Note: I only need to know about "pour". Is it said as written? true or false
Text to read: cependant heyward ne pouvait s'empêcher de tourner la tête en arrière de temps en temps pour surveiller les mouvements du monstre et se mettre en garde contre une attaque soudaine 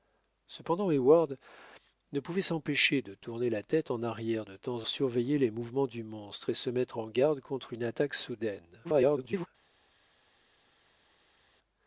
false